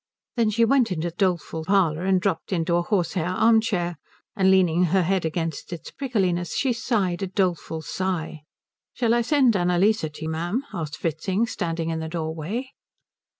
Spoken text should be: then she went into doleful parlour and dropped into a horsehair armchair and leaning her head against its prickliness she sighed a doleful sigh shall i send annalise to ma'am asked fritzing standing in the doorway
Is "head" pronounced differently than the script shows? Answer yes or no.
no